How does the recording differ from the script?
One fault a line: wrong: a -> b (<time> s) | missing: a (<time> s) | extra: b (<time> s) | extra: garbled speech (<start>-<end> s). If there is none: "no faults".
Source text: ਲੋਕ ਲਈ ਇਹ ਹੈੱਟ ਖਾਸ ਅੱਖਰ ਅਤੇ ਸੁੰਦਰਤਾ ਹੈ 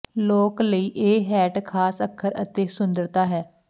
no faults